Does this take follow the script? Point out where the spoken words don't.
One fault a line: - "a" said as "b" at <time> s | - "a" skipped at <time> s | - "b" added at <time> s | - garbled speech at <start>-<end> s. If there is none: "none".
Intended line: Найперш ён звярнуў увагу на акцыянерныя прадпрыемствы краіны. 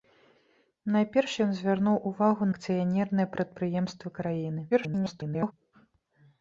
- "на" skipped at 2.4 s
- garbled speech at 4.7-5.5 s